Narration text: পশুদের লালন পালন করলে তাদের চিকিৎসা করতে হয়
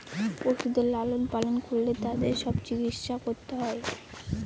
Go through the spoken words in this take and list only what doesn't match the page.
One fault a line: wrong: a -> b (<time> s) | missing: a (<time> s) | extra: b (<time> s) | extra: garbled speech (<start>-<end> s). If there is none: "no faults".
extra: সব (2.4 s)